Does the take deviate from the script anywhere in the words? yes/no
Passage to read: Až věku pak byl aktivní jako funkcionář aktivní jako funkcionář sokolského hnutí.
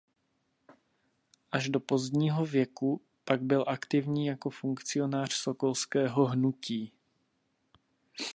yes